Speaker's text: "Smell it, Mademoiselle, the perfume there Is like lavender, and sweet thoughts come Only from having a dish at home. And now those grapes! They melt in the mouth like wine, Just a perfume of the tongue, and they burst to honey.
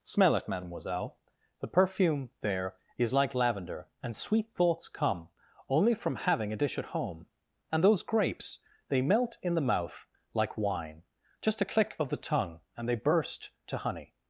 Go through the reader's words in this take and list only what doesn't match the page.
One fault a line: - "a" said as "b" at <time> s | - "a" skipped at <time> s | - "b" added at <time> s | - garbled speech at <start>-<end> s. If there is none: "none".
- "now" skipped at 7.8 s
- "perfume" said as "click" at 11.7 s